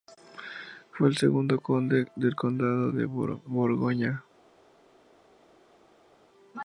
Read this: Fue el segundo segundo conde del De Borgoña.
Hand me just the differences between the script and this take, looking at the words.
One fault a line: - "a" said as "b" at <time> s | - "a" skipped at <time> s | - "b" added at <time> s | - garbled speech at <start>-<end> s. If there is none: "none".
- "segundo" skipped at 1.6 s
- "Condado" added at 2.4 s